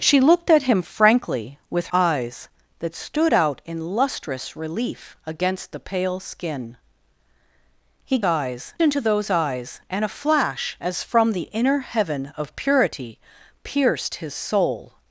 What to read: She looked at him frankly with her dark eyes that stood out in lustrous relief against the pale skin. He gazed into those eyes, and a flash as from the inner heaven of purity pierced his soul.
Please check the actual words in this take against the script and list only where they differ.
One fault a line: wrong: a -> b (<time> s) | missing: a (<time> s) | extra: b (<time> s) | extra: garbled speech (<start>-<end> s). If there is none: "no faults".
missing: her dark (1.9 s)
wrong: gazed -> eyes (8.2 s)